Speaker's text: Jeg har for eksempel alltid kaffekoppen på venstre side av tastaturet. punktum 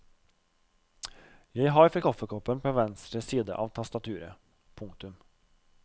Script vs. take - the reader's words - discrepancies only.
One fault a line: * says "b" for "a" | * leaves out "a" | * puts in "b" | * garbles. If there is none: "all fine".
* leaves out "eksempel alltid"